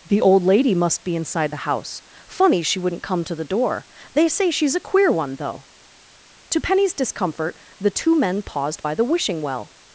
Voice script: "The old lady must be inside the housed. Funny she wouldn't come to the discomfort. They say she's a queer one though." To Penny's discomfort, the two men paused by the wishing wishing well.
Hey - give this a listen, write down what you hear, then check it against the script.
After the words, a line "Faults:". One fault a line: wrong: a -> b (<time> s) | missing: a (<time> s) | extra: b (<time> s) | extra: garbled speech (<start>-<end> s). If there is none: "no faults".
"The old lady must be inside the house. Funny she wouldn't come to the door. They say she's a queer one though." To Penny's discomfort, the two men paused by the wishing well.
Faults:
wrong: housed -> house (1.6 s)
wrong: discomfort -> door (3.4 s)
missing: wishing (9.4 s)